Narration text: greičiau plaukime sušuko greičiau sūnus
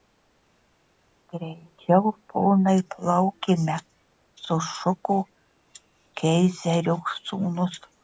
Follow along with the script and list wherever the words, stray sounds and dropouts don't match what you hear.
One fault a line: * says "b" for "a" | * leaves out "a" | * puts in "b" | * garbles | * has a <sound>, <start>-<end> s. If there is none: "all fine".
* puts in "ponai"
* says "keizerio" for "greičiau"